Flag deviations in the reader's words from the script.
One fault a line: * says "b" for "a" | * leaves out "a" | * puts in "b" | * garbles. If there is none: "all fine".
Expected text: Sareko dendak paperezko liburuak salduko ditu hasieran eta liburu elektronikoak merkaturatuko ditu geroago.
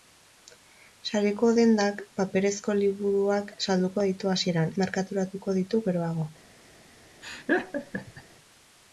* leaves out "eta liburu elektronikoak"